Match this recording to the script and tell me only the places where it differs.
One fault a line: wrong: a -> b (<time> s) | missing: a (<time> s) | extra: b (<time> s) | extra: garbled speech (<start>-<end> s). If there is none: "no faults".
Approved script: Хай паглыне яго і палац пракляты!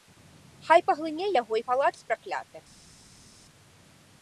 no faults